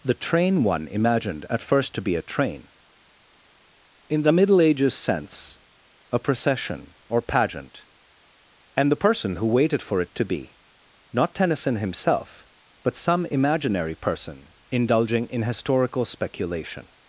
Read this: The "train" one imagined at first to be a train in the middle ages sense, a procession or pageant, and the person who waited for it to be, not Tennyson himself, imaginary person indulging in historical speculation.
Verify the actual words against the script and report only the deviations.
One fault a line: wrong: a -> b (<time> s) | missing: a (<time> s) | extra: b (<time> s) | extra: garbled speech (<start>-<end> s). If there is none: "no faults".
extra: but some (12.8 s)